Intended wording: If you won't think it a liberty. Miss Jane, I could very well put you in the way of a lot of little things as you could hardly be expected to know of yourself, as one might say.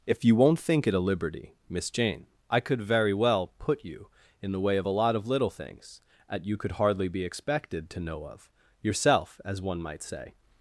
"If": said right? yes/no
yes